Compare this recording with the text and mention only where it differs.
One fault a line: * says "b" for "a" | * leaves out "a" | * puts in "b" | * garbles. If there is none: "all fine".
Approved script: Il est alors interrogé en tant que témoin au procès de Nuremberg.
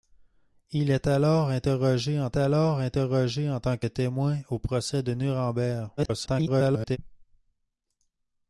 * puts in "alors interrogé en"
* garbles